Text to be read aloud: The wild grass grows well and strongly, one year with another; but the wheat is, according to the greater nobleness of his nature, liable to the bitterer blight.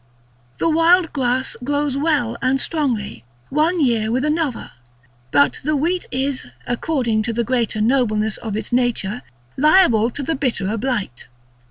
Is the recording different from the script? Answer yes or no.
yes